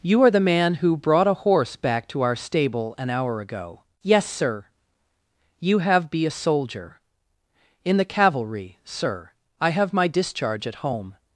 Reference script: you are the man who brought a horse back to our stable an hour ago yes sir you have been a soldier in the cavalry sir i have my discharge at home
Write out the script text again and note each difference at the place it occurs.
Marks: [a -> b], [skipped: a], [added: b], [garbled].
you are the man who brought a horse back to our stable an hour ago yes sir you have [been -> be] a soldier in the cavalry sir i have my discharge at home